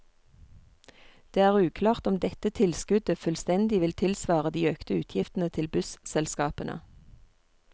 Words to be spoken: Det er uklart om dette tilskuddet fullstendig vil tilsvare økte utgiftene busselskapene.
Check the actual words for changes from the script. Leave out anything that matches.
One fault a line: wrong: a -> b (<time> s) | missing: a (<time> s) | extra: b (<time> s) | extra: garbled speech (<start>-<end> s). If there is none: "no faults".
extra: de (4.5 s)
extra: til (5.6 s)